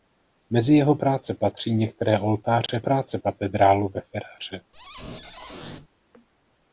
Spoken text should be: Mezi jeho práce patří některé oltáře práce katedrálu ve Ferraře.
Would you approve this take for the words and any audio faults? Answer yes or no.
no